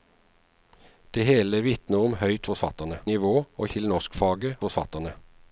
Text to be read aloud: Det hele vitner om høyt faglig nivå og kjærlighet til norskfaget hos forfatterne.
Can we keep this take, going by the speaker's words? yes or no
no